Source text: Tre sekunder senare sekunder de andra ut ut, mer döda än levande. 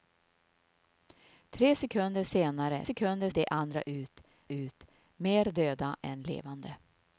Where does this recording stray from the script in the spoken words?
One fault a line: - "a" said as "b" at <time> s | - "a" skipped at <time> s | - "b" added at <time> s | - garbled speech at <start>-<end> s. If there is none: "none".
none